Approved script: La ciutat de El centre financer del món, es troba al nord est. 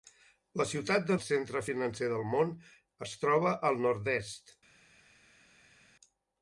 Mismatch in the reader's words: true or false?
false